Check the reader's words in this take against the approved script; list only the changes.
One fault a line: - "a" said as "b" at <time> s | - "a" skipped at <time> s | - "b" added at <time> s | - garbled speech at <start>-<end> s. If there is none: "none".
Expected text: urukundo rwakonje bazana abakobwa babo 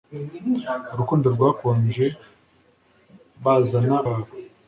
- "abakobwa" skipped at 4.0 s